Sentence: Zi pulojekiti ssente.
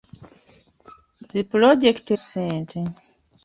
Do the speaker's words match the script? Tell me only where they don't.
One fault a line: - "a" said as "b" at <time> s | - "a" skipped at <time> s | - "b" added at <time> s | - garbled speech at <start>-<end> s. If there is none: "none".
none